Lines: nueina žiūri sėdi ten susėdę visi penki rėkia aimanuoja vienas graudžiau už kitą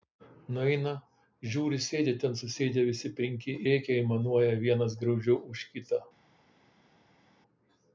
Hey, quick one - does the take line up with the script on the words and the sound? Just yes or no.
yes